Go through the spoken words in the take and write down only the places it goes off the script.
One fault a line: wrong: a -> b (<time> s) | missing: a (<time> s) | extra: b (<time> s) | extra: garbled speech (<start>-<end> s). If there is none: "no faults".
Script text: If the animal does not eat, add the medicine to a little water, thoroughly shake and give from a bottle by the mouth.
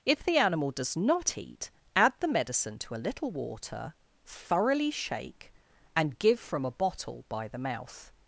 no faults